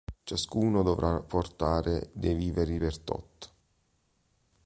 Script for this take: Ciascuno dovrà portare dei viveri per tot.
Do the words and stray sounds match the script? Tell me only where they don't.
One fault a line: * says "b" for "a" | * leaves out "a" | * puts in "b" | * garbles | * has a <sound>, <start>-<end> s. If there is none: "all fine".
all fine